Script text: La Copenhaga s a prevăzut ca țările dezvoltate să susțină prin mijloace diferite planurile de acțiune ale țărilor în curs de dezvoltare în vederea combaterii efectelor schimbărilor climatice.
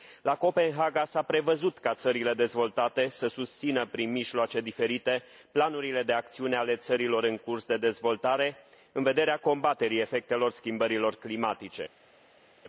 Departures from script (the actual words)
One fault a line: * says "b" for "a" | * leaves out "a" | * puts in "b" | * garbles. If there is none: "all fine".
all fine